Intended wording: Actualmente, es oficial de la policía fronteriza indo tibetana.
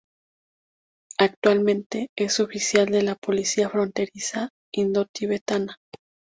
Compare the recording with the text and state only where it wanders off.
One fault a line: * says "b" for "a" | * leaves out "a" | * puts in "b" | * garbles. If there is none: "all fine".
all fine